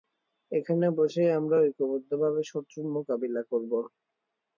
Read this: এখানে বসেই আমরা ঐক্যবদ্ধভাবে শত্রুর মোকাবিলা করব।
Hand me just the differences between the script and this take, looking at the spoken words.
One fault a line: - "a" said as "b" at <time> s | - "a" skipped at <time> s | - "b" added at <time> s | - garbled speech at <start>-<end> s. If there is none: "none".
none